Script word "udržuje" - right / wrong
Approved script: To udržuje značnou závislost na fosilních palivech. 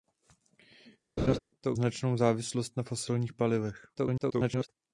wrong